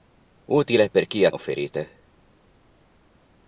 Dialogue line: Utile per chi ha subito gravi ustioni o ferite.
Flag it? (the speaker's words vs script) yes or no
yes